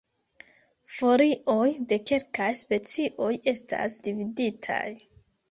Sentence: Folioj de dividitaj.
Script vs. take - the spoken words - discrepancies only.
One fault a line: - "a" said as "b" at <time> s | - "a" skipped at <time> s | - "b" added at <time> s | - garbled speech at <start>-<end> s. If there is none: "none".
- "kelkaj specioj estas" added at 2.1 s